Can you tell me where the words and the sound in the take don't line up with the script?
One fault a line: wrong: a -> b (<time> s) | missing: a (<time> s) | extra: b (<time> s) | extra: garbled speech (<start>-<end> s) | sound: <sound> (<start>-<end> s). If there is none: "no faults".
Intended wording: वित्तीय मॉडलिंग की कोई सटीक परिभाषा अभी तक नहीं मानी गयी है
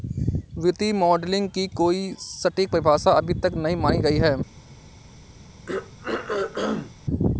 sound: throat clearing (5.7-6.9 s)